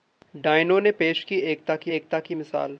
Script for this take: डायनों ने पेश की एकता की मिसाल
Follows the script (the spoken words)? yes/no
no